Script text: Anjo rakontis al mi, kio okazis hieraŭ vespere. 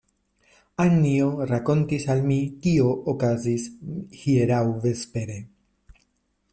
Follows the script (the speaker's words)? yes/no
yes